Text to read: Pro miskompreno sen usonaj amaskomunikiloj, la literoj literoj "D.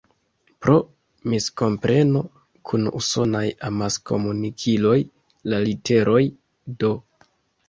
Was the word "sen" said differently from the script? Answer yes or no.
yes